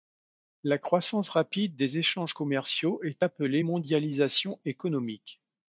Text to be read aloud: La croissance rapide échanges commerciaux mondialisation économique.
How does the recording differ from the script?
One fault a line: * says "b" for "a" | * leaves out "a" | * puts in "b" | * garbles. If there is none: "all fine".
* puts in "des"
* puts in "est appelée"